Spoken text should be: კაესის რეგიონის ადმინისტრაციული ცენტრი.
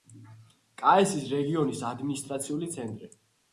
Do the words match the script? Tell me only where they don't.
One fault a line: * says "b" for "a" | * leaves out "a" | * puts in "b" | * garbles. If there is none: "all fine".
all fine